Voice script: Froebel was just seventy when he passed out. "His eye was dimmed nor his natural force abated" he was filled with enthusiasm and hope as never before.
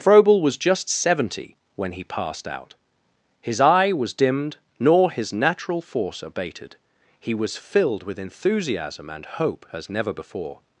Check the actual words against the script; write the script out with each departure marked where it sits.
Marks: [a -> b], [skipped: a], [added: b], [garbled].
Froebel was just seventy when he passed out. "His eye was dimmed nor his natural force abated" he was filled with enthusiasm and hope as never before.